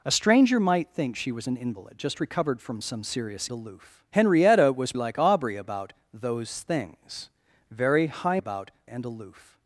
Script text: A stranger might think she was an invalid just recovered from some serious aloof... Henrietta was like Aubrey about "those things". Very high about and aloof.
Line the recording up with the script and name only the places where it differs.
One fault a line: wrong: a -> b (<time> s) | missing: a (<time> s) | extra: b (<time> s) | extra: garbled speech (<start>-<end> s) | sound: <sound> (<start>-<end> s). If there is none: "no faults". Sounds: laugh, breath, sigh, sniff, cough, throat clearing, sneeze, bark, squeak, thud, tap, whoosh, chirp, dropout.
no faults